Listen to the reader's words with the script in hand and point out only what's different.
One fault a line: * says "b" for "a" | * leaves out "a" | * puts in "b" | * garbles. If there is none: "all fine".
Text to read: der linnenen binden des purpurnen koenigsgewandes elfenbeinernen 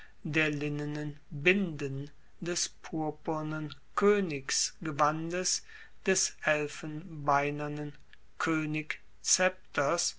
* puts in "des"